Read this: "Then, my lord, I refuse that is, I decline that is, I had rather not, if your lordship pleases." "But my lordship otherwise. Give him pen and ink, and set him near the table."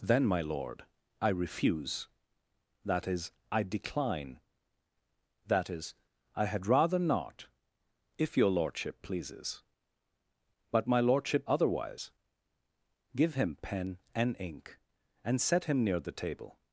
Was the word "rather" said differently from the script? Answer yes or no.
no